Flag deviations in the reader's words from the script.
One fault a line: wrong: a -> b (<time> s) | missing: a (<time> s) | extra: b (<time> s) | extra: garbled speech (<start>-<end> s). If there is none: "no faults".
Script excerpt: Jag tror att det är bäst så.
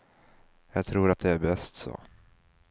no faults